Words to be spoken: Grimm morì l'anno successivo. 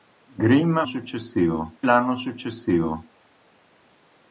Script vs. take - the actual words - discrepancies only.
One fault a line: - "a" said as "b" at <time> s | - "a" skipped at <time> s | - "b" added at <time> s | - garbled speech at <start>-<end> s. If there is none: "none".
- "morì" said as "successivo" at 0.8 s